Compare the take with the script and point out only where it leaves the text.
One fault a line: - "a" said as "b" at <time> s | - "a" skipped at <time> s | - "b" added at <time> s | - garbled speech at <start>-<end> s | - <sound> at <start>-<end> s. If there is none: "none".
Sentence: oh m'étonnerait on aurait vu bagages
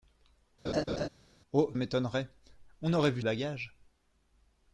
- laugh at 0.6-1.1 s